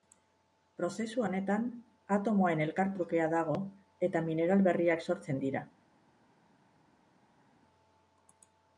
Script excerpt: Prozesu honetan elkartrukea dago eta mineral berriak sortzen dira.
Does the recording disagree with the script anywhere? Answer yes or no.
yes